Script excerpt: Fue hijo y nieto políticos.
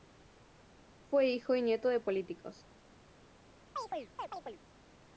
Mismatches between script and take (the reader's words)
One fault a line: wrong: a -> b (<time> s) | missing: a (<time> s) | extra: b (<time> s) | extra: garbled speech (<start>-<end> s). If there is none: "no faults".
extra: de (1.9 s)